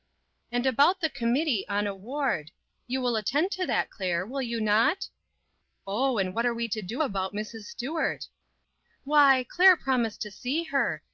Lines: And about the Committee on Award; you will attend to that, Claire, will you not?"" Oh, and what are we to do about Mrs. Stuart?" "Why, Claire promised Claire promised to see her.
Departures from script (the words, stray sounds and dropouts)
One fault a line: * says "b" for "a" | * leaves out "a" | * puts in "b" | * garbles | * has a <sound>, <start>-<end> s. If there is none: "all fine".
* leaves out "Claire promised"